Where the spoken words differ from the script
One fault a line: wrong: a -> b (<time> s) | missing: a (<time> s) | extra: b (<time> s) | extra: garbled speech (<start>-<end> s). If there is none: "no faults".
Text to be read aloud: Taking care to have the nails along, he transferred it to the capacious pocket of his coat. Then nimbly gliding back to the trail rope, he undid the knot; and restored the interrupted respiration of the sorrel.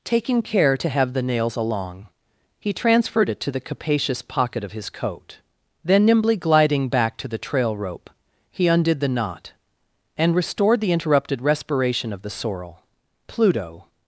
extra: Pluto (13.3 s)